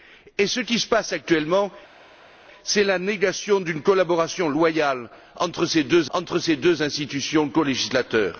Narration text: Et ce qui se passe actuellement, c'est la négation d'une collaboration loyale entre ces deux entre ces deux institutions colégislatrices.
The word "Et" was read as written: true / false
true